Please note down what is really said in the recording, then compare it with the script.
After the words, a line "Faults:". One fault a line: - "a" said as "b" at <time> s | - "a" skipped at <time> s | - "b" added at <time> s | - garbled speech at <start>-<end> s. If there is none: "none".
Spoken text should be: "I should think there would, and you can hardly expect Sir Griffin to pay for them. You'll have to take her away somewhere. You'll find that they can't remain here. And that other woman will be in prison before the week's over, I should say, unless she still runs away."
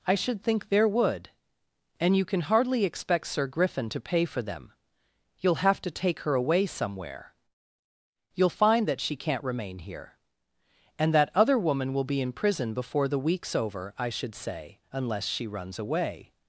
"I should think there would, and you can hardly expect Sir Griffin to pay for them. You'll have to take her away somewhere. You'll find that she can't remain here. And that other woman will be in prison before the week's over, I should say, unless she runs away."
Faults:
- "they" said as "she" at 9.0 s
- "still" skipped at 15.5 s